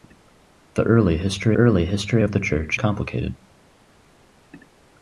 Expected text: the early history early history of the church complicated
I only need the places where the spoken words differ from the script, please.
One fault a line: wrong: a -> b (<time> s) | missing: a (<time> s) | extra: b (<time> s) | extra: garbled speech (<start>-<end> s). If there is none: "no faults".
no faults